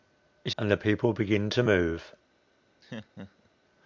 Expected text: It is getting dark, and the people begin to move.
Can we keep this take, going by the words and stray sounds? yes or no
no